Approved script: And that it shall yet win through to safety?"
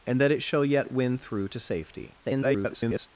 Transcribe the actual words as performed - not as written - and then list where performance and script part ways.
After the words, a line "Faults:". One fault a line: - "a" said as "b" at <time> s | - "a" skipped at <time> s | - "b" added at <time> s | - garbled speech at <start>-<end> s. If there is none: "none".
And that it shall yet win through to safety?" [garbled]
Faults:
- garbled speech at 2.2-3.1 s